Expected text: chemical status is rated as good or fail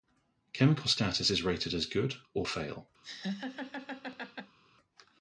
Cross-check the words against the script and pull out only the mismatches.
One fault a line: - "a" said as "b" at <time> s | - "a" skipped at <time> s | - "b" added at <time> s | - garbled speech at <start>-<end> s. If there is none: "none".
none